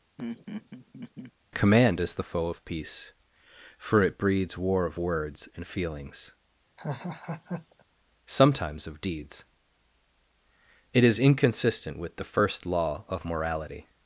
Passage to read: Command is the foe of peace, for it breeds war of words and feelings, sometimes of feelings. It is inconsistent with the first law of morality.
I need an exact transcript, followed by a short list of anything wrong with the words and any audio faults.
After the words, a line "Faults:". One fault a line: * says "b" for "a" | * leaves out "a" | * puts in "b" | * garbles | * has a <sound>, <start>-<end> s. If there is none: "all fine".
Command is the foe of peace, for it breeds war of words and feelings, sometimes of deeds. It is inconsistent with the first law of morality.
Faults:
* has a laugh, 0.2-1.3 s
* has a laugh, 6.8-7.8 s
* says "deeds" for "feelings"